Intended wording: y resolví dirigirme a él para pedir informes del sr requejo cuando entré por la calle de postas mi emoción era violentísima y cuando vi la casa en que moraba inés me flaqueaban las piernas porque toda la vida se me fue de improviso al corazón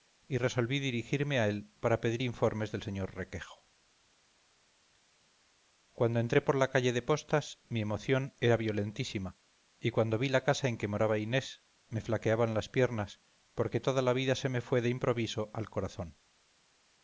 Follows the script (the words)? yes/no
yes